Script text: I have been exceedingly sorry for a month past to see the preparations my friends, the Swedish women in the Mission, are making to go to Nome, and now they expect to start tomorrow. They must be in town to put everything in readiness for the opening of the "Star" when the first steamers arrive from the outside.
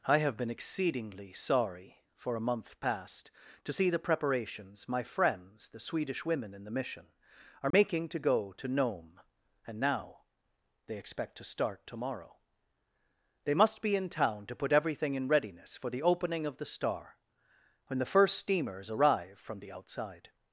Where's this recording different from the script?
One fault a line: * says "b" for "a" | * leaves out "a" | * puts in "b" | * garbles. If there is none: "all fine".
all fine